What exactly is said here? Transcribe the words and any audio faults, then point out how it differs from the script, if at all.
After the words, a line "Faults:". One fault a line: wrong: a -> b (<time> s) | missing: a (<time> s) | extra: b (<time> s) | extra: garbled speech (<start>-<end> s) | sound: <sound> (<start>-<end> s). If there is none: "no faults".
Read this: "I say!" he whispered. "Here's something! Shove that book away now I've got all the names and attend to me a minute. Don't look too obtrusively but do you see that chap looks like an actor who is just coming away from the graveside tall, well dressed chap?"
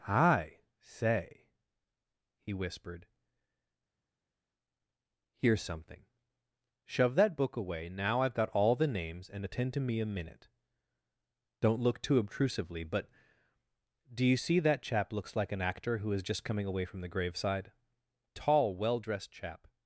"I say!" he whispered. "Here's something! Shove that book away now I've got all the names and attend to me a minute. Don't look too obtrusively but do you see that chap looks like an actor who is just coming away from the graveside tall, well dressed chap?"
Faults:
no faults